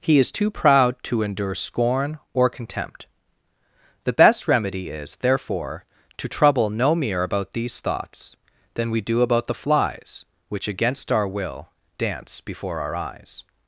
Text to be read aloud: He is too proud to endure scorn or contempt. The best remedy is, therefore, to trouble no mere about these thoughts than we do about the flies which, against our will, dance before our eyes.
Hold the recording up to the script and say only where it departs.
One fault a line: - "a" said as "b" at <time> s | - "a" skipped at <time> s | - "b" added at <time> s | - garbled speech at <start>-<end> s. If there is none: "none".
none